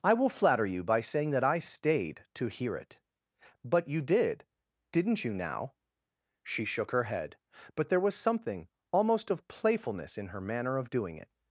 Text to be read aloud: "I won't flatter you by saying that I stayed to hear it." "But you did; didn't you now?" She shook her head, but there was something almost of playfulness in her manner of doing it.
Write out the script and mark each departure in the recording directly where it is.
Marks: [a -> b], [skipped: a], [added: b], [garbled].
"I [won't -> will] flatter you by saying that I stayed to hear it." "But you did; didn't you now?" She shook her head, but there was something almost of playfulness in her manner of doing it.